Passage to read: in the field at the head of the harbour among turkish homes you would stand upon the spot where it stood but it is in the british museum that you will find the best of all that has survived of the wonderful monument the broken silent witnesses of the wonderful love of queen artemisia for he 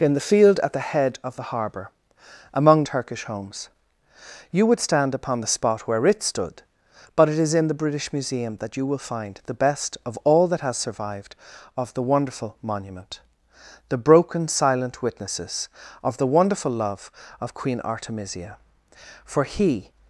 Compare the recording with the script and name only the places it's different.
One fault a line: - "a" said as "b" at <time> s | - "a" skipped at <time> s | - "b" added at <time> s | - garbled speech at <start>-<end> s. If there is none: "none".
none